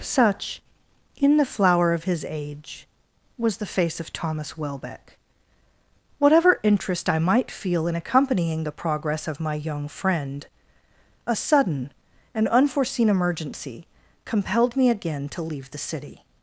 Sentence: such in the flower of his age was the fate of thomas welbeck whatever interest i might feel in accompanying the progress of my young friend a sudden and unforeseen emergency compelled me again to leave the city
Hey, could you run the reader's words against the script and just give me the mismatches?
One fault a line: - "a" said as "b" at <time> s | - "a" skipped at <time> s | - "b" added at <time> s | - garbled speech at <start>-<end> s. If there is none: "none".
- "fate" said as "face" at 3.6 s